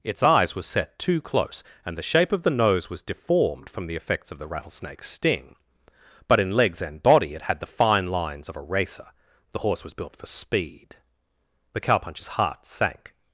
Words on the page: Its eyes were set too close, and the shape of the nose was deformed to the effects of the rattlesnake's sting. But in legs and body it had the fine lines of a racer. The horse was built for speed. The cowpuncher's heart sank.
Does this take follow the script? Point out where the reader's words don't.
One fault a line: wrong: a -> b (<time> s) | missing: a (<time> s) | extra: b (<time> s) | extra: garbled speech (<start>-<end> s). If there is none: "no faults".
wrong: to -> from (3.7 s)